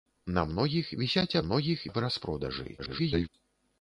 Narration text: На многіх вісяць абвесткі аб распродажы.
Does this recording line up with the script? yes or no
no